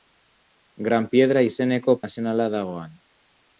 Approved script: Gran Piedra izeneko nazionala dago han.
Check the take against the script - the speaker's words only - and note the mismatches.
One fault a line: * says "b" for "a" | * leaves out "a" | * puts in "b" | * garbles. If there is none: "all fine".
all fine